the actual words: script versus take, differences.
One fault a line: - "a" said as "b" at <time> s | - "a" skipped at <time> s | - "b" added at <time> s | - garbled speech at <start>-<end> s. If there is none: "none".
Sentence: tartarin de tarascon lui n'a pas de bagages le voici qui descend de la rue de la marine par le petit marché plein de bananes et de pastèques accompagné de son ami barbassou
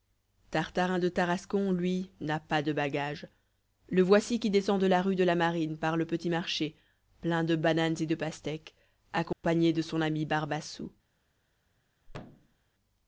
none